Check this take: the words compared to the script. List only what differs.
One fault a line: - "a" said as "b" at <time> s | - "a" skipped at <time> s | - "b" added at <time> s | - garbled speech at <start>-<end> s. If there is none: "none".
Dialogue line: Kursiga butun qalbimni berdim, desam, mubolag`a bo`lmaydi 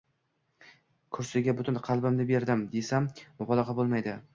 none